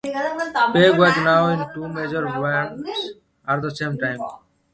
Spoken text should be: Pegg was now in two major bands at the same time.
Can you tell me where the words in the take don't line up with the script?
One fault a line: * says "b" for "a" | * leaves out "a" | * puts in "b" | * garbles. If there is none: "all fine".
all fine